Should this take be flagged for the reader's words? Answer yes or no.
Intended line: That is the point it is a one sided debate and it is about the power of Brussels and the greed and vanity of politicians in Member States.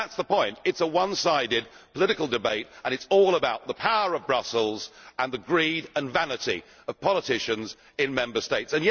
yes